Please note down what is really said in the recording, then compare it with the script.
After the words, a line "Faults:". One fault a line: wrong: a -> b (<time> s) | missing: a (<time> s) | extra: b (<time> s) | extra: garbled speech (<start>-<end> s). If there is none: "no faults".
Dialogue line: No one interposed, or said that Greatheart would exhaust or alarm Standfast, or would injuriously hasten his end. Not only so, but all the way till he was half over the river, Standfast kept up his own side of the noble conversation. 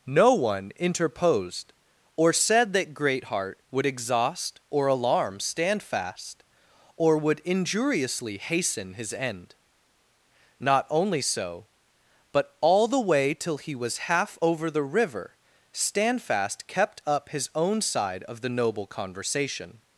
No one interposed, or said that Greatheart would exhaust or alarm Standfast, or would injuriously hasten his end. Not only so, but all the way till he was half over the river, Standfast kept up his own side of the noble conversation.
Faults:
no faults